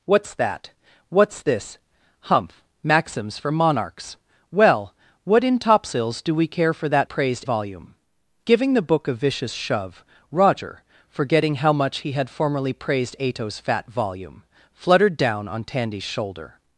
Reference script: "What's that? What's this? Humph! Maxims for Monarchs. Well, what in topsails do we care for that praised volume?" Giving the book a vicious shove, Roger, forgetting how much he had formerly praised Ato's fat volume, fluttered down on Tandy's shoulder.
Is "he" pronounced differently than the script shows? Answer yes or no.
no